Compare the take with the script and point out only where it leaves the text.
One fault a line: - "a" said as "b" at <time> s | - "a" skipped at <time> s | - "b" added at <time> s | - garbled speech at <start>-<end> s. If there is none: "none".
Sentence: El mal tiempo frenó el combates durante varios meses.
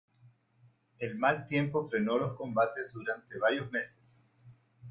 - "el" said as "los" at 2.2 s